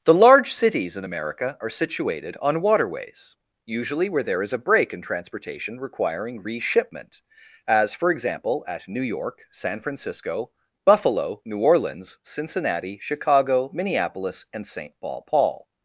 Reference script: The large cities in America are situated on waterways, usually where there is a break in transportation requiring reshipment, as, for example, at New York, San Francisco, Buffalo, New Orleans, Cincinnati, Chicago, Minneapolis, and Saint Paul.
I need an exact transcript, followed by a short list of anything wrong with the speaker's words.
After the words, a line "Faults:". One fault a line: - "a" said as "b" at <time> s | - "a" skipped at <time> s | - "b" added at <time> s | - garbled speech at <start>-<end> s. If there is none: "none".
The large cities in America are situated on waterways, usually where there is a break in transportation requiring reshipment, as, for example, at New York, San Francisco, Buffalo, New Orleans, Cincinnati, Chicago, Minneapolis, and Saint Paul Paul.
Faults:
- "Paul" added at 15.2 s